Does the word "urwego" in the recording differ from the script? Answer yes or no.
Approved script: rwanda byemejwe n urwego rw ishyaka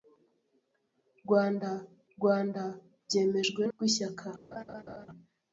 yes